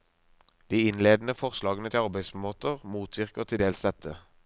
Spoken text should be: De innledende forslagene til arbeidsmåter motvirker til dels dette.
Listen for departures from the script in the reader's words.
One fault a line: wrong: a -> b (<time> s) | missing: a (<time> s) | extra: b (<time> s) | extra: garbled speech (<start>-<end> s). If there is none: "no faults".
no faults